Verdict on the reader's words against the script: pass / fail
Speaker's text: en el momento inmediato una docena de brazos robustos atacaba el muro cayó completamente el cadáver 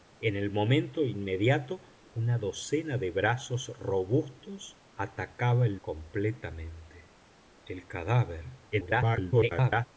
fail